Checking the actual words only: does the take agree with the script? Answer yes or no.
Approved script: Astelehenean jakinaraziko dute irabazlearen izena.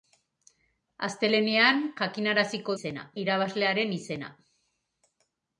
no